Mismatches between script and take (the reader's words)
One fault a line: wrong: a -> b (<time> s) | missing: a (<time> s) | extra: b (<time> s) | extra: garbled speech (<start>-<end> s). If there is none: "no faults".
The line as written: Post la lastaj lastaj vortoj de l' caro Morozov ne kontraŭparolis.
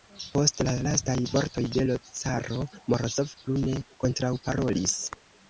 missing: lastaj (1.1 s)
extra: plu (3.4 s)